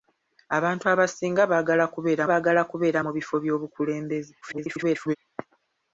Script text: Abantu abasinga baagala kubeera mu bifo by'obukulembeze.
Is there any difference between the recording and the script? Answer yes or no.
yes